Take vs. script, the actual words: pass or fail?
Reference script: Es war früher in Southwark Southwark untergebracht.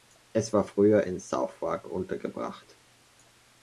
fail